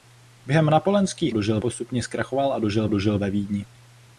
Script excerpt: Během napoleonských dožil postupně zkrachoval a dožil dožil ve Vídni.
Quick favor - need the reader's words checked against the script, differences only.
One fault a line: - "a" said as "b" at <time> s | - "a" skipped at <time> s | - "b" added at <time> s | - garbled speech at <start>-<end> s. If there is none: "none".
none